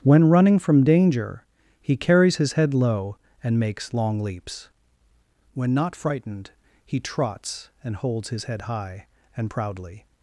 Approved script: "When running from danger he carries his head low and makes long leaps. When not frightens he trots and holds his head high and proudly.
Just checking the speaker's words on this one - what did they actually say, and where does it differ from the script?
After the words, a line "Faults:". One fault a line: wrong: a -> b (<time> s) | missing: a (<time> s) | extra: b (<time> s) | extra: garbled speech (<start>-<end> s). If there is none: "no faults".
"When running from danger he carries his head low and makes long leaps. When not frightened he trots and holds his head high and proudly.
Faults:
wrong: frightens -> frightened (6.0 s)